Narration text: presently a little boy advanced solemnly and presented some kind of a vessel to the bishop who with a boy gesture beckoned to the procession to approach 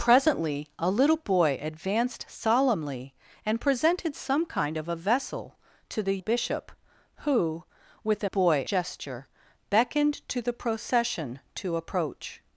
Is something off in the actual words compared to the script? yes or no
no